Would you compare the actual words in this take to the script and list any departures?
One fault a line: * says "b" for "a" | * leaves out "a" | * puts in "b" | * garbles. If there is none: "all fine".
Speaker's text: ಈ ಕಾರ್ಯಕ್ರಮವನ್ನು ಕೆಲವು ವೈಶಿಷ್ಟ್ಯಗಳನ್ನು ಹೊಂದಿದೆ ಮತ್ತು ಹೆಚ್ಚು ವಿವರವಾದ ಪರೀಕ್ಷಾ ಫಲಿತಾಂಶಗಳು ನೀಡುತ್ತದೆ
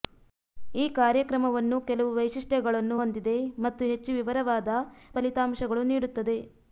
* leaves out "ಪರೀಕ್ಷಾ"